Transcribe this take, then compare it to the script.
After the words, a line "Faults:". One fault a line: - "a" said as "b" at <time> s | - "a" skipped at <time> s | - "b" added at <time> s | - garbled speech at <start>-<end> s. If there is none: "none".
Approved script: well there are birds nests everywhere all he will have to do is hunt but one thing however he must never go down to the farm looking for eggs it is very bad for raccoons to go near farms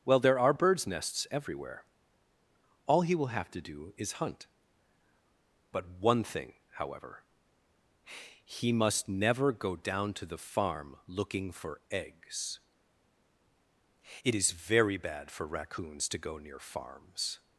well there are birds nests everywhere all he will have to do is hunt but one thing however he must never go down to the farm looking for eggs it is very bad for raccoons to go near farms
Faults:
none